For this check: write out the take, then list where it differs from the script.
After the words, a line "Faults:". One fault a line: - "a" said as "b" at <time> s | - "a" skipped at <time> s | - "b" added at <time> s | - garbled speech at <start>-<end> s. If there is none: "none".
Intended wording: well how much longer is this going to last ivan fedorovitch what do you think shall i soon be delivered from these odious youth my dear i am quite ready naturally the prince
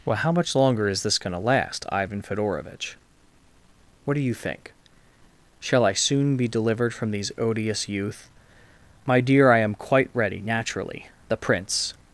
well how much longer is this going to last ivan fedorovitch what do you think shall i soon be delivered from these odious youth my dear i am quite ready naturally the prince
Faults:
none